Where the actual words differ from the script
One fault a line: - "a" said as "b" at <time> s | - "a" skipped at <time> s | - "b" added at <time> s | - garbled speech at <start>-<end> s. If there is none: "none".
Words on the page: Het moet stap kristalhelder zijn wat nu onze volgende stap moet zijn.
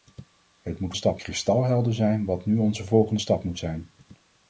none